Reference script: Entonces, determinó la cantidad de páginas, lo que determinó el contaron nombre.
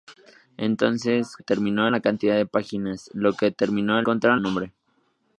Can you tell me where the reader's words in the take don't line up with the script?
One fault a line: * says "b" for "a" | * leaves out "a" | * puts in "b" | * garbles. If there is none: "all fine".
all fine